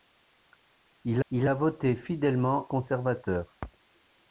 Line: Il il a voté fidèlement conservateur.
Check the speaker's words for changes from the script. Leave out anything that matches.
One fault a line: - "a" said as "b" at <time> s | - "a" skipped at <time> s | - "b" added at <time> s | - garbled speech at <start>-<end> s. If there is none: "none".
none